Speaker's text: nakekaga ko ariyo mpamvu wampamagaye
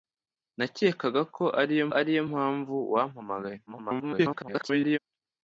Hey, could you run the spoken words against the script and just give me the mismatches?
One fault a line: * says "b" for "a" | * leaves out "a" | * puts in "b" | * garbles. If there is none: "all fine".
* puts in "ariyo"
* garbles